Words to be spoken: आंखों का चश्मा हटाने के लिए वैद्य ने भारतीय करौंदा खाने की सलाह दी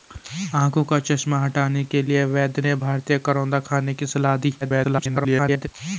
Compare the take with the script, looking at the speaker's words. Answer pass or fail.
fail